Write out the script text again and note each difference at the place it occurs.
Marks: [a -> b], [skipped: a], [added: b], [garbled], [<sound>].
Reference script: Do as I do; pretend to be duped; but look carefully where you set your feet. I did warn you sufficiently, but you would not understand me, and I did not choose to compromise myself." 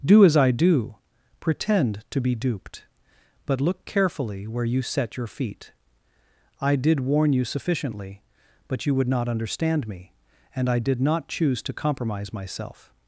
Do as I do; pretend to be duped; but look carefully where you set your feet. I did warn you sufficiently, but you would not understand me, and I did not choose to compromise myself."